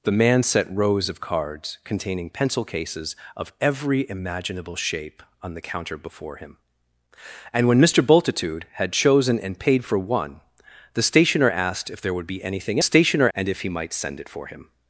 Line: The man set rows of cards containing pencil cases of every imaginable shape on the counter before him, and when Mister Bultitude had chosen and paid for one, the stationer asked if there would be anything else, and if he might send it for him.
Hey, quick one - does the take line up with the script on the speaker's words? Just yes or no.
no